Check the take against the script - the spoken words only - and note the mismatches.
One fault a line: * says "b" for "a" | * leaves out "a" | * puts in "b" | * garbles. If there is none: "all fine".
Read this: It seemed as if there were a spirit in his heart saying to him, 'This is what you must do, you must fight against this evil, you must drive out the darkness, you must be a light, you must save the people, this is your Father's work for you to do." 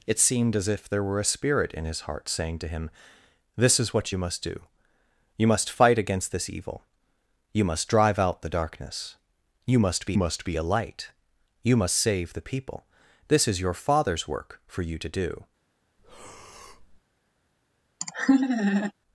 * puts in "must be"